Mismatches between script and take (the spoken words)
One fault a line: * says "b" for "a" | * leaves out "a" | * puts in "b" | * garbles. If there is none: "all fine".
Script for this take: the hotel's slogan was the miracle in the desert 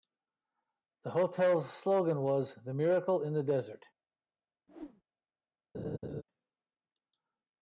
all fine